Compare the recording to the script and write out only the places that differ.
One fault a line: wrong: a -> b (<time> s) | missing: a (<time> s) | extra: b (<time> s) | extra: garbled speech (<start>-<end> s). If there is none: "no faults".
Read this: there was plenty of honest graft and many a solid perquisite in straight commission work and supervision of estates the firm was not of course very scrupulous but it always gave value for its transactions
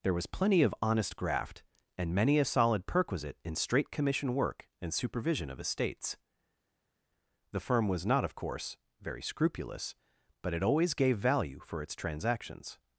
no faults